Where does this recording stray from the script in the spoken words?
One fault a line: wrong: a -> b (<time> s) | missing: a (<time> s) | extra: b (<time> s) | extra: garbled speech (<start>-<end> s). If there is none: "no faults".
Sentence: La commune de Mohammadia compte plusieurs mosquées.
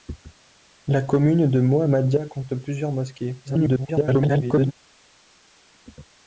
extra: garbled speech (3.4-4.7 s)